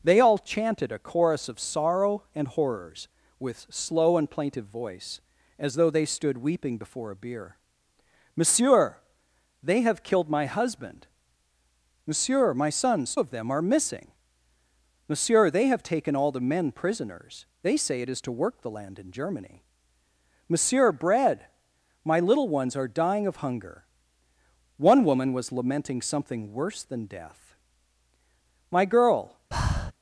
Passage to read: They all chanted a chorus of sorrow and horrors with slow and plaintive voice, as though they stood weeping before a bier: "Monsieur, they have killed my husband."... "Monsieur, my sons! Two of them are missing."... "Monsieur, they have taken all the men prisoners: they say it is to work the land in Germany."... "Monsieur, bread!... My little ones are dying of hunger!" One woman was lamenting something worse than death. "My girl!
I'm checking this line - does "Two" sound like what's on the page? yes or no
no